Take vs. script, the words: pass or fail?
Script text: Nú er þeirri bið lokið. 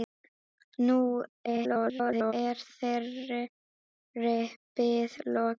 fail